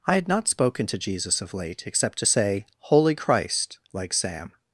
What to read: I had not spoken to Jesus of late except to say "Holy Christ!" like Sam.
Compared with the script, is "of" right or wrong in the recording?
right